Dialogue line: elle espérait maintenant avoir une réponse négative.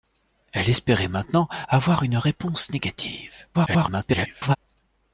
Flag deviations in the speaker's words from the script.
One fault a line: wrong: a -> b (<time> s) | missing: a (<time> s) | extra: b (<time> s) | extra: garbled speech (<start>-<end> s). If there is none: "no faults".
extra: garbled speech (3.5-4.6 s)